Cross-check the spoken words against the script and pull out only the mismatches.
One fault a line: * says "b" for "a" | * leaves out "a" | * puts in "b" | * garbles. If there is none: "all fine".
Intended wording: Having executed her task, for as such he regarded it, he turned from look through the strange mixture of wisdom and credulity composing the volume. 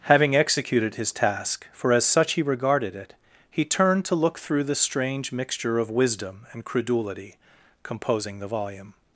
* says "his" for "her"
* says "to" for "from"